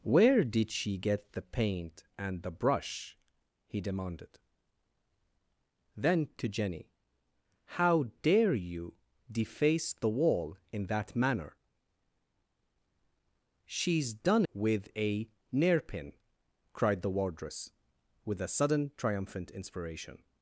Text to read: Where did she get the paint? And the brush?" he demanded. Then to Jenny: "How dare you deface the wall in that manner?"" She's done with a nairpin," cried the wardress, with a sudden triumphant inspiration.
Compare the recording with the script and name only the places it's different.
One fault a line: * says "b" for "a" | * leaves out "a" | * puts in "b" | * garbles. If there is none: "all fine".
all fine